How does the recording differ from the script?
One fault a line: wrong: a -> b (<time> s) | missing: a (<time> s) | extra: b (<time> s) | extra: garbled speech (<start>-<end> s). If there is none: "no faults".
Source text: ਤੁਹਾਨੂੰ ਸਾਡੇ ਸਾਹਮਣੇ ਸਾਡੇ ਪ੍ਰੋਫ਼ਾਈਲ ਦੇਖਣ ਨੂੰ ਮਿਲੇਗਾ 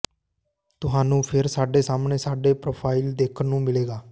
extra: ਫਿਰ (1.2 s)